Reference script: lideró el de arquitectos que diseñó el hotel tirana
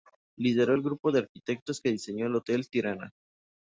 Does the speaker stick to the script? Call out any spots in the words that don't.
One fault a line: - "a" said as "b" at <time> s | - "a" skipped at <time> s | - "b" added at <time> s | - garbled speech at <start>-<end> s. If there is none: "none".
- "grupo" added at 0.8 s